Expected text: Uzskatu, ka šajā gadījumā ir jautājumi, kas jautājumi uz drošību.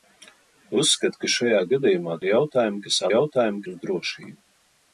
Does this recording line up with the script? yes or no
yes